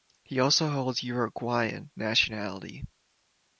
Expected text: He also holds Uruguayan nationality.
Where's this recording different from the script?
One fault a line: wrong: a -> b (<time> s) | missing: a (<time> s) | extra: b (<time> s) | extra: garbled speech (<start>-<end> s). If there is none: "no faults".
no faults